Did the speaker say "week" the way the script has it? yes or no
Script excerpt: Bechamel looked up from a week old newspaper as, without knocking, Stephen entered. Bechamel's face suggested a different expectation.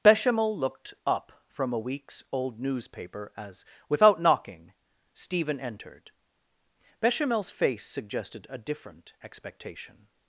no